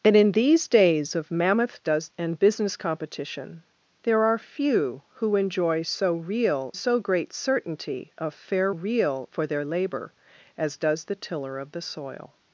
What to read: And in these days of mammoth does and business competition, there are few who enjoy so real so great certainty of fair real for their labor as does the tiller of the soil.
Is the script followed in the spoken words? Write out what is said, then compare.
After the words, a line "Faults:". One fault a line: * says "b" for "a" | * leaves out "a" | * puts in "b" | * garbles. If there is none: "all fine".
And in these days of mammoth does and business competition, there are few who enjoy so real so great certainty of fair real for their labor as does the tiller of the soil.
Faults:
all fine